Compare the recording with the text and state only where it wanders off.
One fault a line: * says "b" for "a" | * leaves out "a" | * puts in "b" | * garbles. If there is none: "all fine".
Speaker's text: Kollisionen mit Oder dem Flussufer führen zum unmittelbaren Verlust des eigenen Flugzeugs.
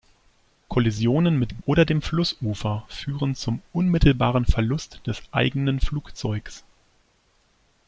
all fine